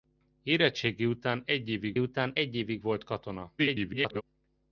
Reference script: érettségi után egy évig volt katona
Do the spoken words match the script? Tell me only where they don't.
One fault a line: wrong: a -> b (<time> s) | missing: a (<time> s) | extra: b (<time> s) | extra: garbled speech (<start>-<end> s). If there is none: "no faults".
extra: után egy évig (2.0 s)
extra: garbled speech (3.6-4.2 s)